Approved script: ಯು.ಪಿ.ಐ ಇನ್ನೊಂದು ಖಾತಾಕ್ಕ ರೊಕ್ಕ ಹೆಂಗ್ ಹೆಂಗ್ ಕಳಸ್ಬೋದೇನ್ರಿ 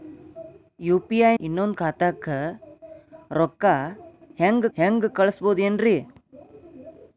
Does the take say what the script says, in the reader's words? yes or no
yes